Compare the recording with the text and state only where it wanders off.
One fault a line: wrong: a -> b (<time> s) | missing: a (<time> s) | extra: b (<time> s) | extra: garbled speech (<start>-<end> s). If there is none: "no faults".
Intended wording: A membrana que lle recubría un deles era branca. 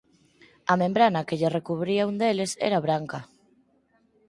no faults